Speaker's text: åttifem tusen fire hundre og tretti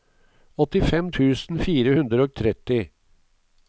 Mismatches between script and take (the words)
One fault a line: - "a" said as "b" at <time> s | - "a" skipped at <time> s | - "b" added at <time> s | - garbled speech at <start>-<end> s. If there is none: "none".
none